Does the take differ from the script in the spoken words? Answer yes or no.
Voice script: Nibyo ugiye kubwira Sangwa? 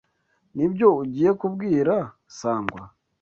no